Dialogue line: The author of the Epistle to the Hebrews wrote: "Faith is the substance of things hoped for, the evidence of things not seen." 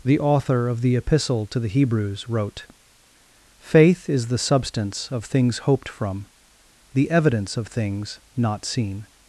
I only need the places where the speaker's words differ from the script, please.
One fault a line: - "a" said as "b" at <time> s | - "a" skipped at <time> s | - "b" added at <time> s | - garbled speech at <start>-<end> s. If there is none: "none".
- "for" said as "from" at 5.9 s